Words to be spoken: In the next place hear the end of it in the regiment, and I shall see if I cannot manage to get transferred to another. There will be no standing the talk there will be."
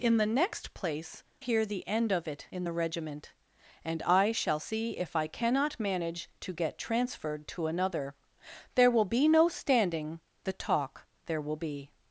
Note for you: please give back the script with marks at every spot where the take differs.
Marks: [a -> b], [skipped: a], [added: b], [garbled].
In the next place hear the end of it in the regiment, and I shall see if I cannot manage to get transferred to another. There will be no standing the talk there will be."